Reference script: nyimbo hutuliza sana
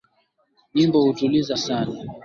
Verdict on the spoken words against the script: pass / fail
pass